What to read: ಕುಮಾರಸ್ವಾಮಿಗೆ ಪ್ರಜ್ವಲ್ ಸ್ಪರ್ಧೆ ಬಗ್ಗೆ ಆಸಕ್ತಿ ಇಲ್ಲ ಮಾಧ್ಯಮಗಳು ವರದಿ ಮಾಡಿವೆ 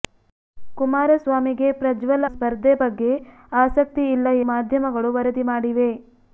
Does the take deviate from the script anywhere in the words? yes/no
no